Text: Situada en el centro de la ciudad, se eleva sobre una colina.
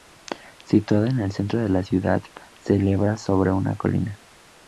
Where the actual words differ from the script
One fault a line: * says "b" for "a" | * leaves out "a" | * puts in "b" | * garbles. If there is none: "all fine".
all fine